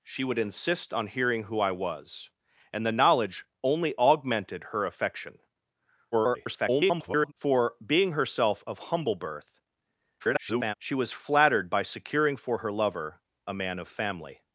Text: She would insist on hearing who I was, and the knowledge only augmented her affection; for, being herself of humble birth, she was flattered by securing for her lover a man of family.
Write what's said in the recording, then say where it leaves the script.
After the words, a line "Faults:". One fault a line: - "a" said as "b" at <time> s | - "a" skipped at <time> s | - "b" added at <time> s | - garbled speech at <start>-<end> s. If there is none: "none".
She would insist on hearing who I was, and the knowledge only augmented her affection; [garbled] for, being herself of humble birth, [garbled] she was flattered by securing for her lover a man of family.
Faults:
- garbled speech at 6.1-7.3 s
- garbled speech at 10.2-10.7 s